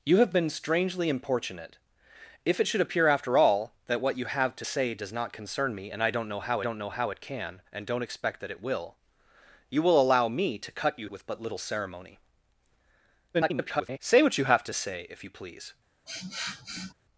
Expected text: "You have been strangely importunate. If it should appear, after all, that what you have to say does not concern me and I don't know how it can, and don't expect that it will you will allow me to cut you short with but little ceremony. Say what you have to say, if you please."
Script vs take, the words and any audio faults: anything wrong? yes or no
yes